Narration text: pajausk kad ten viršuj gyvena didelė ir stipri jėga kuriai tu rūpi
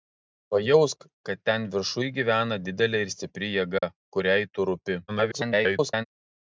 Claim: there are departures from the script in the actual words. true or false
true